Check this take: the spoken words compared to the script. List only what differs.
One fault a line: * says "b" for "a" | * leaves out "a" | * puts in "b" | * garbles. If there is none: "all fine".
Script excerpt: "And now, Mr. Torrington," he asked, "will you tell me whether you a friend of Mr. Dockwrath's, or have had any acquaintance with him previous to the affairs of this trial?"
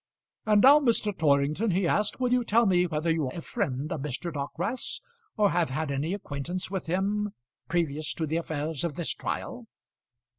all fine